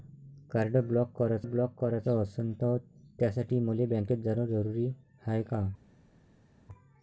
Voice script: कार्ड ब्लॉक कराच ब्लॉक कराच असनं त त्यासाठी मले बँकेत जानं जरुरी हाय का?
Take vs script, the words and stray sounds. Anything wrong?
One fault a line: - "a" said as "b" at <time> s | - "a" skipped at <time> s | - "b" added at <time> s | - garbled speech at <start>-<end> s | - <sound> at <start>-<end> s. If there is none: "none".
none